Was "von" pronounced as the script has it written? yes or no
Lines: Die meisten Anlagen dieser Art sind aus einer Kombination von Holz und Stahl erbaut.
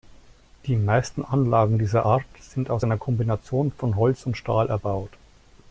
yes